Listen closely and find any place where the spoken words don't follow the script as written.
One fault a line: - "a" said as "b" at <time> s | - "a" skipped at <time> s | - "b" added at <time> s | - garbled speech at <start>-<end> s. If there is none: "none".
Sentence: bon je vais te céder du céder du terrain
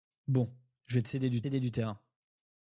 none